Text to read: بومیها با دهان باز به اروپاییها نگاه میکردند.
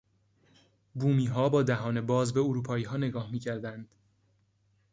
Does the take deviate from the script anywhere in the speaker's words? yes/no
no